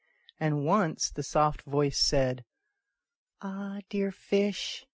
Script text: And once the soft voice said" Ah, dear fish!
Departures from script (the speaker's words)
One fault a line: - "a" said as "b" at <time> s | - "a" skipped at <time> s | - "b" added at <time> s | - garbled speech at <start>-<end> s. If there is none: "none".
none